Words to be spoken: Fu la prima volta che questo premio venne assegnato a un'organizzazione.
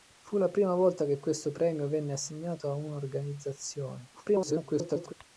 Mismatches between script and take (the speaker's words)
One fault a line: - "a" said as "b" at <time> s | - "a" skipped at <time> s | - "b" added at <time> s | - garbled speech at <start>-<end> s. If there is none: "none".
- garbled speech at 4.1-5.1 s